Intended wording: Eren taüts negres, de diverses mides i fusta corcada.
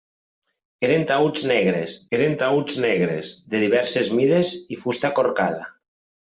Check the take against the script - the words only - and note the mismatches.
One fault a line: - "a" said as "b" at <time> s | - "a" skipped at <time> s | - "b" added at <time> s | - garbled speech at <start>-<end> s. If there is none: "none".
- "eren taüts negres" added at 2.2 s